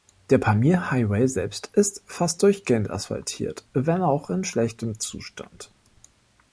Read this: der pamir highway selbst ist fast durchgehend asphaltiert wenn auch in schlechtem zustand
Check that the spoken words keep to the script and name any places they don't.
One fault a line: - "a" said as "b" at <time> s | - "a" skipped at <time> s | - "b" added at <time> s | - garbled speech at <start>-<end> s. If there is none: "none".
none